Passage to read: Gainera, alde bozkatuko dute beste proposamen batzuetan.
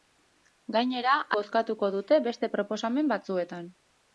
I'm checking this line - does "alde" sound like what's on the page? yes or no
no